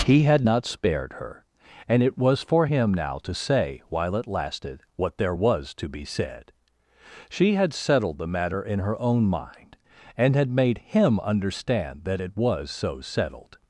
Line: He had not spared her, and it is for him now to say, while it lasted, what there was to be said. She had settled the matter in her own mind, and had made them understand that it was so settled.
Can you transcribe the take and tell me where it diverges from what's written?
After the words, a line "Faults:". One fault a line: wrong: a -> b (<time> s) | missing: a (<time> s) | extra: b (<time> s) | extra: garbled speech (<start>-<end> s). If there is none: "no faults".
He had not spared her, and it was for him now to say, while it lasted, what there was to be said. She had settled the matter in her own mind, and had made him understand that it was so settled.
Faults:
wrong: is -> was (2.2 s)
wrong: them -> him (10.8 s)